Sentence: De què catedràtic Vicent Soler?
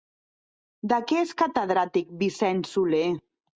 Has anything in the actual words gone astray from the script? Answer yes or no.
yes